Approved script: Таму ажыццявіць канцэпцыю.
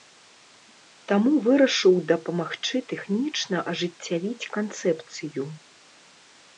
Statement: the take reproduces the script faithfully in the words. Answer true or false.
false